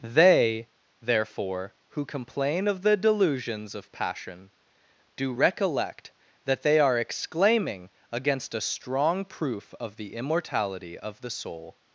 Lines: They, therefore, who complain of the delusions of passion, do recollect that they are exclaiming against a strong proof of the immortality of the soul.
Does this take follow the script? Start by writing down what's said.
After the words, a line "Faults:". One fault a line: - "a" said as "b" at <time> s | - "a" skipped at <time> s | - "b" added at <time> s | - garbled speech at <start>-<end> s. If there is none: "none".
They, therefore, who complain of the delusions of passion, do recollect that they are exclaiming against a strong proof of the immortality of the soul.
Faults:
none